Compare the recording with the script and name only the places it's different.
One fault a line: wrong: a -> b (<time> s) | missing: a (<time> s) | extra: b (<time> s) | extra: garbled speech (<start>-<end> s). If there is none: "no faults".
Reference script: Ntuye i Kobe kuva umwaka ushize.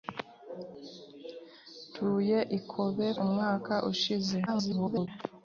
missing: kuva (3.1 s)
extra: garbled speech (4.5-5.1 s)